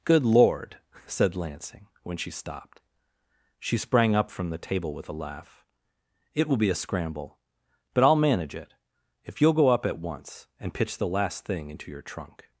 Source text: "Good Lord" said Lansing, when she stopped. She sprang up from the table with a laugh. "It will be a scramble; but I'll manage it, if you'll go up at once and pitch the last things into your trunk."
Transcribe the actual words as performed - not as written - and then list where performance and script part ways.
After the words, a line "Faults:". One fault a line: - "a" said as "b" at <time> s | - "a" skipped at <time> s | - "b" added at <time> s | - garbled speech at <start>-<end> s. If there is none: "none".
"Good Lord" said Lansing, when she stopped. She sprang up from the table with a laugh. "It will be a scramble; but I'll manage it, if you'll go up at once and pitch the last thing into your trunk."
Faults:
- "things" said as "thing" at 11.4 s